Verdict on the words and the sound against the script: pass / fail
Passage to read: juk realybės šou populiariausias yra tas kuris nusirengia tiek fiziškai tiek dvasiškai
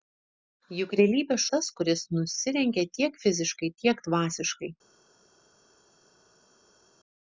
fail